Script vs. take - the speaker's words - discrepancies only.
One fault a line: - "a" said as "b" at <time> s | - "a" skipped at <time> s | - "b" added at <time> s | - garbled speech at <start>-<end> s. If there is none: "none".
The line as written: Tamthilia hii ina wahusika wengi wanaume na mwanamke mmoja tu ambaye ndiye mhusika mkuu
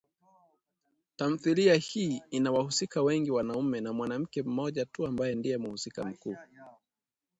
none